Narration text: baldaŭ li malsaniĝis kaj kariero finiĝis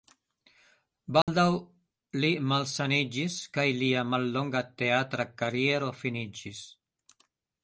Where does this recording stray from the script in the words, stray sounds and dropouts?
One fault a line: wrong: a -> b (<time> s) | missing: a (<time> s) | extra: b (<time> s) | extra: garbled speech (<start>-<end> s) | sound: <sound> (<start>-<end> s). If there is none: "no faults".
sound: dropout (1.2-1.3 s)
extra: lia mallonga teatra (3.8 s)